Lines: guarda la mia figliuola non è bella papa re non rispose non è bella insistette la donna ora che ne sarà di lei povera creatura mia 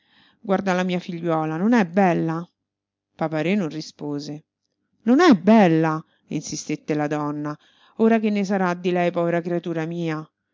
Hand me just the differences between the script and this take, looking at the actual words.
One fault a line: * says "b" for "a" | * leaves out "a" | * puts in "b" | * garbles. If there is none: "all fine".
all fine